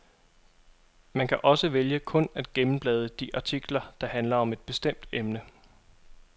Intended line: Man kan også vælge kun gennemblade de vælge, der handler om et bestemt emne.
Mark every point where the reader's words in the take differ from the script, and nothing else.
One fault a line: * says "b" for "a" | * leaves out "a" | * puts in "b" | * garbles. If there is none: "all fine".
* puts in "at"
* says "artikler" for "vælge"